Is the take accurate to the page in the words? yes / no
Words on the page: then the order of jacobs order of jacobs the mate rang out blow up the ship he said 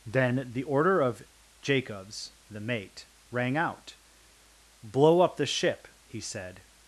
no